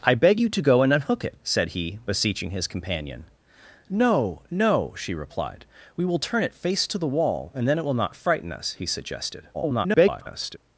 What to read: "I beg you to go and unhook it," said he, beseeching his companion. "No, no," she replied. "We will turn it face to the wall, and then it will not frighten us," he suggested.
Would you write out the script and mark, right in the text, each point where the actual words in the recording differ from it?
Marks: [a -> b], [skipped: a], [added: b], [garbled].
"I beg you to go and unhook it," said he, beseeching his companion. "No, no," she replied. "We will turn it face to the wall, and then it will not frighten us," he suggested. [garbled]